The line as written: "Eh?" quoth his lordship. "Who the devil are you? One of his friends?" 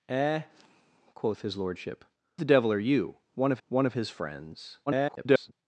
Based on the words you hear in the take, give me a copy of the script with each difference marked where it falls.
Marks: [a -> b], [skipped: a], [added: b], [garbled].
"Eh?" quoth his lordship. [skipped: "Who] the devil are you? One of [added: one of] his friends?" [garbled]